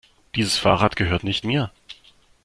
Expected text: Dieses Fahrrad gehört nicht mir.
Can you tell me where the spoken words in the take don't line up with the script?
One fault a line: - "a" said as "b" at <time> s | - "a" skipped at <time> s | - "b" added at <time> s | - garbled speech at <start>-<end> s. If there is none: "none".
none